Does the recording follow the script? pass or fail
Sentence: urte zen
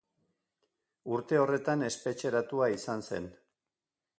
fail